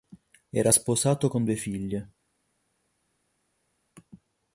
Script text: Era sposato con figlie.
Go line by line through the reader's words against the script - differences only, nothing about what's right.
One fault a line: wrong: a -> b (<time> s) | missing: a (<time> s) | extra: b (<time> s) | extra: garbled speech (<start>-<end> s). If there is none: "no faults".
extra: due (1.4 s)